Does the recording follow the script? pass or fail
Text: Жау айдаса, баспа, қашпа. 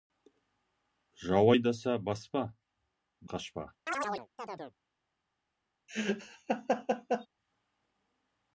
pass